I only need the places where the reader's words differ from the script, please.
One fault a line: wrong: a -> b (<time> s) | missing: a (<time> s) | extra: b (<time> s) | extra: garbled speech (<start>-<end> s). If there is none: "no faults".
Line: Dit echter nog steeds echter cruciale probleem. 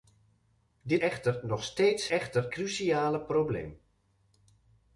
no faults